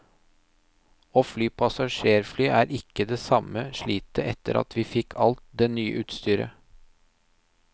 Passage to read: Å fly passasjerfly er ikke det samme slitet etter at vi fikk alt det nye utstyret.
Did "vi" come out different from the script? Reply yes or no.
no